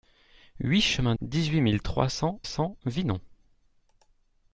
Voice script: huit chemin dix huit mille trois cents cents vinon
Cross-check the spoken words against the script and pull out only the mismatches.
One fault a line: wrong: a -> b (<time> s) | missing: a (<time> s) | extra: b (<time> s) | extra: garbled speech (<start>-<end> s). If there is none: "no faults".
no faults